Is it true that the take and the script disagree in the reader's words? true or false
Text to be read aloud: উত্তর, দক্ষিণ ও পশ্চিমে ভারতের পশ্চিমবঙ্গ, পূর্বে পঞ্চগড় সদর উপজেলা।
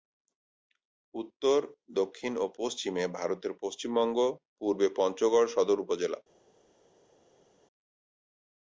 false